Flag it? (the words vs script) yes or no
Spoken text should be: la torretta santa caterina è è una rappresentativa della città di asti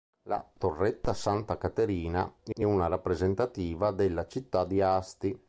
no